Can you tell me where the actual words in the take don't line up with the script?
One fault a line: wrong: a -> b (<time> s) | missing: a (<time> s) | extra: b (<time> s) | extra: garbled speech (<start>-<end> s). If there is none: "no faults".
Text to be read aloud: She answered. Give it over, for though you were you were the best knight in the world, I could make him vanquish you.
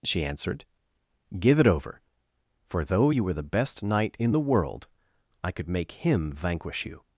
missing: you were (3.3 s)